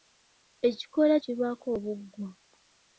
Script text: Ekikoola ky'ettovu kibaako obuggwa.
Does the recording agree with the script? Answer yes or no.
no